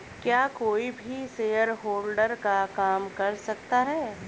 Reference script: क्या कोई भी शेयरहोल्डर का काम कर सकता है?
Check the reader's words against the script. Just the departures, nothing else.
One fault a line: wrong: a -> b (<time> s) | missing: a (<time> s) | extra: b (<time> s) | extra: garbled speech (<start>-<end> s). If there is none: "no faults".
no faults